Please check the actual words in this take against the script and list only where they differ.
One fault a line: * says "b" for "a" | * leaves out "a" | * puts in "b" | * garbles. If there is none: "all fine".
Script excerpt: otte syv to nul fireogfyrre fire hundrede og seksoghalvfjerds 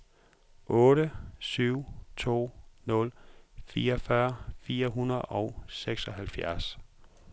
all fine